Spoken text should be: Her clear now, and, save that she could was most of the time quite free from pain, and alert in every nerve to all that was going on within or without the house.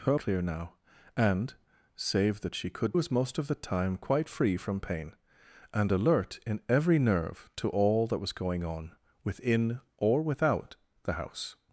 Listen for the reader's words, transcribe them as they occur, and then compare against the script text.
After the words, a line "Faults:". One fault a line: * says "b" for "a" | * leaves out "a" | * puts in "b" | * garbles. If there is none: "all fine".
Her clear now, and, save that she could was most of the time quite free from pain, and alert in every nerve to all that was going on within or without the house.
Faults:
all fine